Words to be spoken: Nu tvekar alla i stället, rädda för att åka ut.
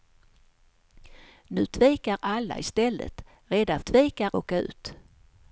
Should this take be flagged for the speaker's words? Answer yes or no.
yes